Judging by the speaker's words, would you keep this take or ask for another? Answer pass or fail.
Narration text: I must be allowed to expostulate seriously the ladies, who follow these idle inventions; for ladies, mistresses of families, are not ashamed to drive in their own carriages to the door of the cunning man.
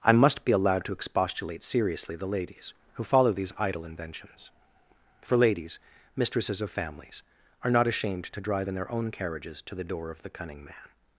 pass